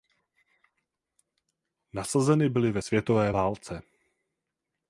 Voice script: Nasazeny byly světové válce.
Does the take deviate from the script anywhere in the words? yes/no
yes